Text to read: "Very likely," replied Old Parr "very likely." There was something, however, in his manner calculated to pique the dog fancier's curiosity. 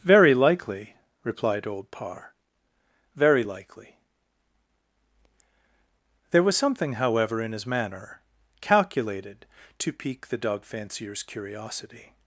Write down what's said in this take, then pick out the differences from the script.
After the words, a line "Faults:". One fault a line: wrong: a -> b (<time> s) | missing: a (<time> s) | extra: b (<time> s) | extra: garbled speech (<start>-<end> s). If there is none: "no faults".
"Very likely," replied Old Parr "very likely." There was something, however, in his manner calculated to pique the dog fancier's curiosity.
Faults:
no faults